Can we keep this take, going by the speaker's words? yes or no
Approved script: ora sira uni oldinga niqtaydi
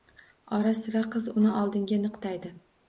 no